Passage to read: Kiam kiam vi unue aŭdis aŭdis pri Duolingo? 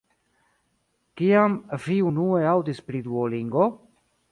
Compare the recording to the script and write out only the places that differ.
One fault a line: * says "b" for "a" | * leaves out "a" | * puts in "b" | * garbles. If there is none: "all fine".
* leaves out "kiam"
* leaves out "aŭdis"